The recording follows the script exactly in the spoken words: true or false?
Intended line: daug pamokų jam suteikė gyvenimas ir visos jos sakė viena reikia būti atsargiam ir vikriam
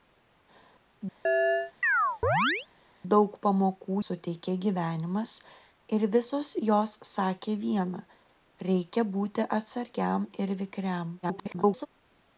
false